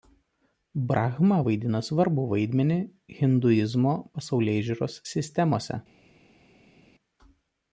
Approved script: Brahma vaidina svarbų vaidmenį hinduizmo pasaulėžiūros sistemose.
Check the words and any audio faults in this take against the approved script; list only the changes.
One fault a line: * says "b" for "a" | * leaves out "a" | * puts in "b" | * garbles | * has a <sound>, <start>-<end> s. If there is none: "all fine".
all fine